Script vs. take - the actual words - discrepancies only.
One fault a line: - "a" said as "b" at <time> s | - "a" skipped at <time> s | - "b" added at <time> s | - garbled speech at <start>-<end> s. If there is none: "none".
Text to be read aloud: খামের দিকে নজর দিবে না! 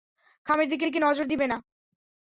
- "দিকে" added at 0.8 s